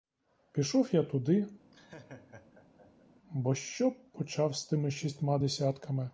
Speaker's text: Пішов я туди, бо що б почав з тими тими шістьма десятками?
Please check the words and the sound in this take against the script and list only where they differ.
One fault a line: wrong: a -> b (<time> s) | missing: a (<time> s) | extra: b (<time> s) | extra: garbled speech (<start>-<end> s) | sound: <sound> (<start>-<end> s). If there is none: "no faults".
sound: laugh (1.7-3.1 s)
missing: тими (4.9 s)